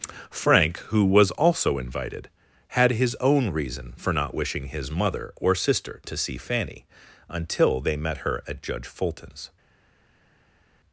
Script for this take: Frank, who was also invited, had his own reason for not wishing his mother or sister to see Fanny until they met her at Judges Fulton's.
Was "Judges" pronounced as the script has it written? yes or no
no